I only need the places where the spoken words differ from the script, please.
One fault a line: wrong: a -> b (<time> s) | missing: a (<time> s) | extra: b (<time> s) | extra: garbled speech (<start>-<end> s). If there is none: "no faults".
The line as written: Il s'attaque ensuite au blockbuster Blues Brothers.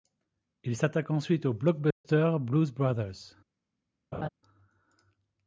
no faults